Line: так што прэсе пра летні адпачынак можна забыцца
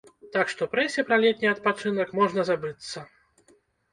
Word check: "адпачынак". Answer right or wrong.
right